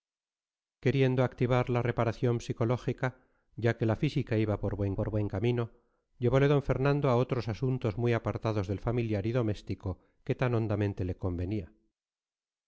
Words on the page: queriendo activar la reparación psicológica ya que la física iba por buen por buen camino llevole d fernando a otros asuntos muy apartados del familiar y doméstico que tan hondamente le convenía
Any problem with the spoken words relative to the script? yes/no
no